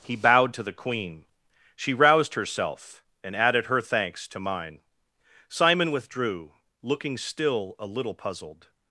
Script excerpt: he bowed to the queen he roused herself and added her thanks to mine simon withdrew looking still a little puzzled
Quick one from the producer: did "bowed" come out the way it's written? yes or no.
yes